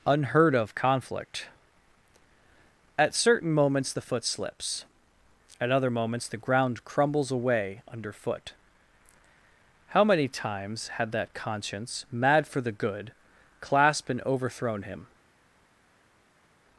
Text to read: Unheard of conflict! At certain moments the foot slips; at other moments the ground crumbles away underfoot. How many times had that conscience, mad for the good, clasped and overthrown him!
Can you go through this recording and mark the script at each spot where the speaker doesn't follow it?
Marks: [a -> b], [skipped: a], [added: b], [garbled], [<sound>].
Unheard of conflict! At certain moments the foot slips; at other moments the ground crumbles away underfoot. How many times had that conscience, mad for the good, clasped and overthrown him!